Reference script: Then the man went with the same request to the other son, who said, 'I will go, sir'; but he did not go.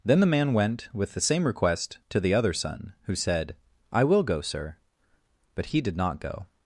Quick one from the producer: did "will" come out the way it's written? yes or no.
yes